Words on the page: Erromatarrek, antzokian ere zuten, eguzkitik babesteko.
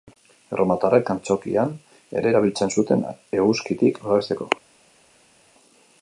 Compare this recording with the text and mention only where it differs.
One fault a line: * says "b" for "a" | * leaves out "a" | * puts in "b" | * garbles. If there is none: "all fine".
* puts in "erabiltzen"